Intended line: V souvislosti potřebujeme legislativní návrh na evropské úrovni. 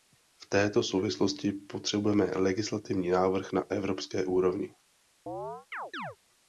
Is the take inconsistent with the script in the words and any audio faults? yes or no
yes